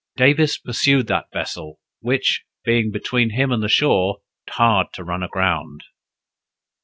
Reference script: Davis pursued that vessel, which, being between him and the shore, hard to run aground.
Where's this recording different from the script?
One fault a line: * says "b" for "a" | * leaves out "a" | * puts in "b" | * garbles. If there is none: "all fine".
all fine